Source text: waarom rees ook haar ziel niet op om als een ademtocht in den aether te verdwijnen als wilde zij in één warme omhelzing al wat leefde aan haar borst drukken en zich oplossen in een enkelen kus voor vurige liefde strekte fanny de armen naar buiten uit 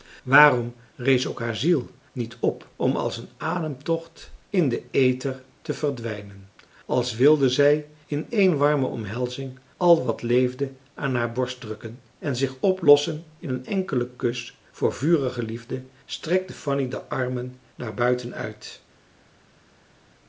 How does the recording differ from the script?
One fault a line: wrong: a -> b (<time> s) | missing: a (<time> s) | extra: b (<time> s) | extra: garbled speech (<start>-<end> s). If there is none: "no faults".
no faults